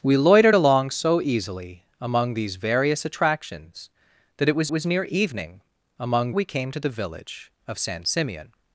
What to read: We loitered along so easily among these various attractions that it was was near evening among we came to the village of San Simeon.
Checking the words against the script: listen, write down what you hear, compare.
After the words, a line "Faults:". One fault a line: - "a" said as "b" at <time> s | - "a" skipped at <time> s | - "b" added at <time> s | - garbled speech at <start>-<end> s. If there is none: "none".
We loitered along so easily among these various attractions that it was was near evening among we came to the village of San Simeon.
Faults:
none